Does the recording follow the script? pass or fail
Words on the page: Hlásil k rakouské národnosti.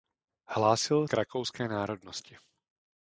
pass